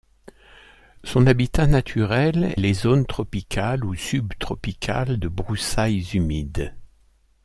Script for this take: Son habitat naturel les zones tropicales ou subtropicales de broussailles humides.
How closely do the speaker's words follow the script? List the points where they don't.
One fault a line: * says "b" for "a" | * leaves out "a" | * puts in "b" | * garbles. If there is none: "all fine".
all fine